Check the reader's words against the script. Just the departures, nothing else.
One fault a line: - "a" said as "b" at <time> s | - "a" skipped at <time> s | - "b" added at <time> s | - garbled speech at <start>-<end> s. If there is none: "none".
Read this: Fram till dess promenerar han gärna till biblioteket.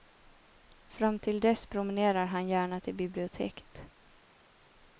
none